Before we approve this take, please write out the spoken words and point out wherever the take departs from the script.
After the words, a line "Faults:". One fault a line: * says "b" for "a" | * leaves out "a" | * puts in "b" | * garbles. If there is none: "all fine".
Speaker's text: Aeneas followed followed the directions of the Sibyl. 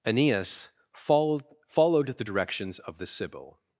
Aeneas followed followed the directions of the Sibyl.
Faults:
all fine